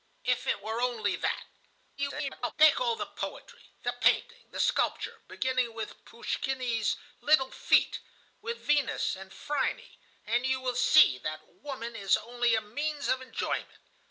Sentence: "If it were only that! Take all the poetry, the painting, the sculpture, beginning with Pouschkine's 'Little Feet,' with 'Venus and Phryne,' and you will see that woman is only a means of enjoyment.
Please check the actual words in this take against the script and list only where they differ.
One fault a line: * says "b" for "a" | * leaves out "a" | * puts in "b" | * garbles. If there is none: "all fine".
* garbles